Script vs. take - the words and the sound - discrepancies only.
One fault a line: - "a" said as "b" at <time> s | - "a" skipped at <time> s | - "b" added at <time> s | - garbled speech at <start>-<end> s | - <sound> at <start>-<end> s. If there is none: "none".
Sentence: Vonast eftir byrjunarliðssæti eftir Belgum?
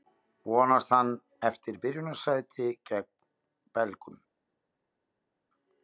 - "hann" added at 0.9 s
- "eftir" said as "gegn" at 2.9 s